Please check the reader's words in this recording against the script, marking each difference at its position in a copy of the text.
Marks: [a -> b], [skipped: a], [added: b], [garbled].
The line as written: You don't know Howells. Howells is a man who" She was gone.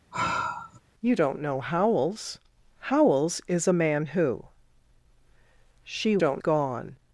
You don't know Howells. Howells is a man who" She [was -> don't] gone.